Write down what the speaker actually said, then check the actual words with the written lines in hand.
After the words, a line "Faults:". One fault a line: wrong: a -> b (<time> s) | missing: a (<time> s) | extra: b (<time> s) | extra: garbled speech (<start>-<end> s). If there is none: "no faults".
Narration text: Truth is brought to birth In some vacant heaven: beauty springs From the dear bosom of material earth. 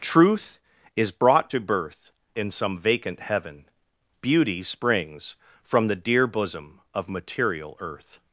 Truth is brought to birth In some vacant heaven: beauty springs From the dear bosom of material earth.
Faults:
no faults